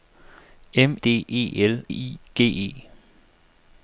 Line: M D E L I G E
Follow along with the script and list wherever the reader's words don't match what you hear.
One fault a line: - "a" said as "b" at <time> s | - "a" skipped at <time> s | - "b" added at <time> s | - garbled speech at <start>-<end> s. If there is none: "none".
none